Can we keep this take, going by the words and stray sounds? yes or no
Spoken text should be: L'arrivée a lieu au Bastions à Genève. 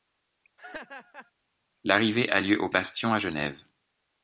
no